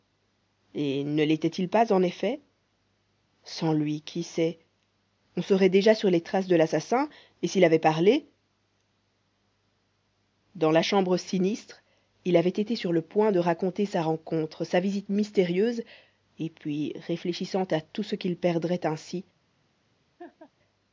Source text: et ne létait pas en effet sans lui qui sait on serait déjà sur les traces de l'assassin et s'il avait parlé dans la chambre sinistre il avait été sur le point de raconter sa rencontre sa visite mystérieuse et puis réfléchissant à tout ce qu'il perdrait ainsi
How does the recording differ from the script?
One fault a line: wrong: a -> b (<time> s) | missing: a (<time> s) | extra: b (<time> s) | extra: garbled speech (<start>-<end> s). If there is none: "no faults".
extra: il (1.5 s)